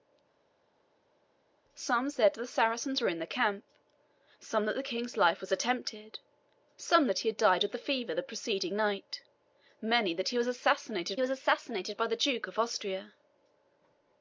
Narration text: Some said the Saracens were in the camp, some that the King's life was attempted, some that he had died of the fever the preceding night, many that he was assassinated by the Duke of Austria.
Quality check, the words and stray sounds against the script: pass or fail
fail